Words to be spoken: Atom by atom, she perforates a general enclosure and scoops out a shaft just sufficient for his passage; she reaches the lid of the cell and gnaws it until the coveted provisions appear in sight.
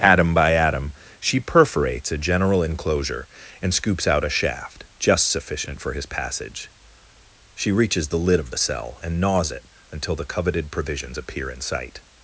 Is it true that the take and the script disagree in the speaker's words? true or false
false